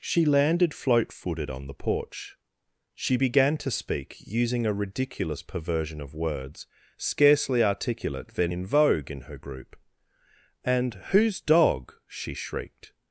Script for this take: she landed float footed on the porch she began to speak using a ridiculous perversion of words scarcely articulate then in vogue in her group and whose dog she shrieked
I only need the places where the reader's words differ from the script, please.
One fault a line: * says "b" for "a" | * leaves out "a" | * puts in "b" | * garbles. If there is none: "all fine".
all fine